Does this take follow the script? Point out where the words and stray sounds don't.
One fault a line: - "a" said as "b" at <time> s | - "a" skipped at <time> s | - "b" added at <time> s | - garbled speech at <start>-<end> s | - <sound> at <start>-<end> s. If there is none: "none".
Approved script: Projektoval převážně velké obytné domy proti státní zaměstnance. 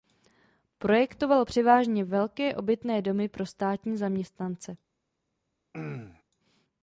- "proti" said as "pro" at 3.3 s
- throat clearing at 5.7-6.2 s